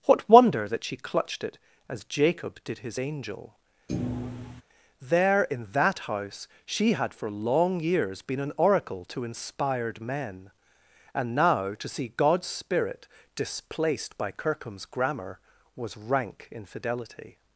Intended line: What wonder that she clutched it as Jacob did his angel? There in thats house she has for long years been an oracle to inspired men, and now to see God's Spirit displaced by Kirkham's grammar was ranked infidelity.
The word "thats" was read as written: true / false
false